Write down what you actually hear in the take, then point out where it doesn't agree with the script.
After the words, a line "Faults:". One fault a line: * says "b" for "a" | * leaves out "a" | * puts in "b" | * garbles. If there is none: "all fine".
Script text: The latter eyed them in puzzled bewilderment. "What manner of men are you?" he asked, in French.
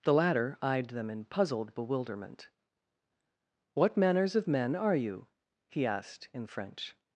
The latter eyed them in puzzled bewilderment. "What manners of men are you?" he asked, in French.
Faults:
* says "manners" for "manner"